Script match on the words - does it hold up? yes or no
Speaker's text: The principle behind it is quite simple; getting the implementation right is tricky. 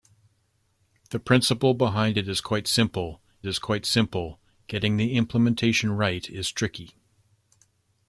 no